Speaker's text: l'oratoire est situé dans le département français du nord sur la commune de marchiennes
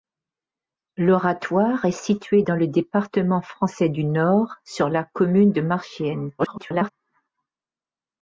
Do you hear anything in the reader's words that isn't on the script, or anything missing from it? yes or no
yes